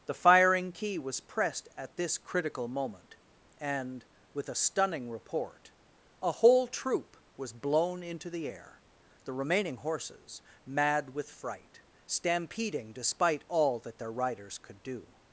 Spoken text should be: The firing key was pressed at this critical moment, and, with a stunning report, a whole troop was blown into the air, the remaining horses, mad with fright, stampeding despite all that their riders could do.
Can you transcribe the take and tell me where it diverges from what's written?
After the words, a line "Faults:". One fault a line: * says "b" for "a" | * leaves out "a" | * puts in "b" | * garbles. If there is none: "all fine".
The firing key was pressed at this critical moment, and, with a stunning report, a whole troop was blown into the air, the remaining horses, mad with fright, stampeding despite all that their riders could do.
Faults:
all fine